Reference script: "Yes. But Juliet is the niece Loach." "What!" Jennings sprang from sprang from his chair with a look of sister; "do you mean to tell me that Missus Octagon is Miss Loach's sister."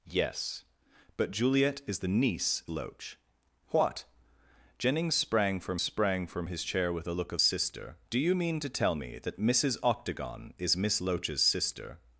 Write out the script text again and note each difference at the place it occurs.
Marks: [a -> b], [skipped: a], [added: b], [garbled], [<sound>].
"Yes. But Juliet is the niece Loach." "What!" Jennings sprang from sprang from his chair with a look of sister; "do you mean to tell me that Missus Octagon is Miss Loach's sister."